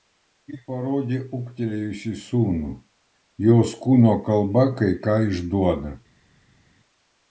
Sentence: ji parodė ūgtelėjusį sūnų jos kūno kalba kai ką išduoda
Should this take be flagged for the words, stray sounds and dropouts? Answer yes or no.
no